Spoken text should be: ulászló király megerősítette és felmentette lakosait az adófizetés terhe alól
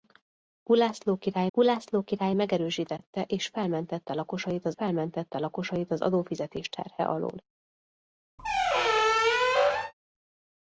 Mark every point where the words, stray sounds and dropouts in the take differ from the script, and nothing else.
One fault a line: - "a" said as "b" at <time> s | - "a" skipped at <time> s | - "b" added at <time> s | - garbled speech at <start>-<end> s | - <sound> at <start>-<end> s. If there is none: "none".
- "ulászló király" added at 1.6 s
- "felmentette lakosait az" added at 4.7 s
- squeak at 8.4-9.9 s